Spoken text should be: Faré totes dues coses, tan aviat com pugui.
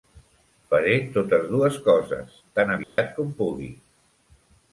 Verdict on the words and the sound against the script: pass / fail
fail